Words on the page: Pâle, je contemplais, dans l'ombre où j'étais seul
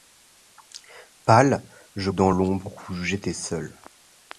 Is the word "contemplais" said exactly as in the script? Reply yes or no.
no